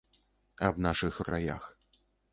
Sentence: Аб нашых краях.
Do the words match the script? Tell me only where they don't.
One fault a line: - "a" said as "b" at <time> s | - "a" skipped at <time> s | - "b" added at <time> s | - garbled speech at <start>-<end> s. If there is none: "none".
none